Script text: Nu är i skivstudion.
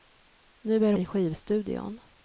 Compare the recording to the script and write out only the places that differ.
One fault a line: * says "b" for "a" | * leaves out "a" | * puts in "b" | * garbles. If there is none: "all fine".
all fine